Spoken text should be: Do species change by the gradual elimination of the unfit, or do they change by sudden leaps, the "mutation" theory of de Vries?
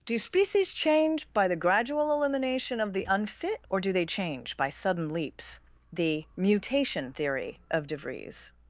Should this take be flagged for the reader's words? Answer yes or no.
no